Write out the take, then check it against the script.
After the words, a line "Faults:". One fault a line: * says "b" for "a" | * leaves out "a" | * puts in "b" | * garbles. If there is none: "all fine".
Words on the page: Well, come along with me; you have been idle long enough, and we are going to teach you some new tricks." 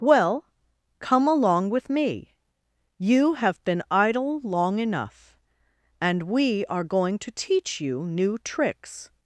Well, come along with me; you have been idle long enough, and we are going to teach you new tricks."
Faults:
* leaves out "some"